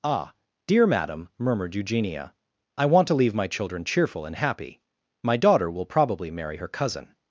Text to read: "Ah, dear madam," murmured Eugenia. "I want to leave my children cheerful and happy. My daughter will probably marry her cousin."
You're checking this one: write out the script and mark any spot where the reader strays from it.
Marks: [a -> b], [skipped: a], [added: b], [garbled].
"Ah, dear madam," murmured Eugenia. "I want to leave my children cheerful and happy. My daughter will probably marry her cousin."